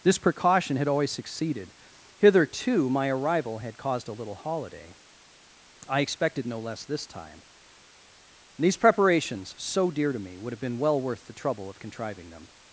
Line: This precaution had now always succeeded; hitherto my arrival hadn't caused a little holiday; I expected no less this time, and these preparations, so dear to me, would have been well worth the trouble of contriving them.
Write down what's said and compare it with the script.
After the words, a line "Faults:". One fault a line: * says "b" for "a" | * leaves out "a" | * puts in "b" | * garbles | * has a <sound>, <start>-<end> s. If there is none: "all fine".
This precaution had always succeeded; hitherto my arrival had caused a little holiday; I expected no less this time, and these preparations, so dear to me, would have been well worth the trouble of contriving them.
Faults:
* leaves out "now"
* says "had" for "hadn't"